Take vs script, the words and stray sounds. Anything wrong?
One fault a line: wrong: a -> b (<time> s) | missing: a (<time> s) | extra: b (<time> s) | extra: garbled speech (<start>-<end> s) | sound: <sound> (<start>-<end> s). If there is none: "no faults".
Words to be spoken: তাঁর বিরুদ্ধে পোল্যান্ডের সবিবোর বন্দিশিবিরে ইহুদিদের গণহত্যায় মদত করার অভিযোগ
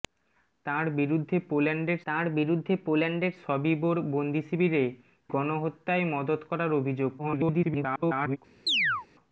extra: তাঁর বিরুদ্ধে পোল্যান্ডের (2.1 s)
missing: ইহুদিদের (4.8 s)
extra: garbled speech (7.2-8.4 s)
sound: chirp (8.7-9.1 s)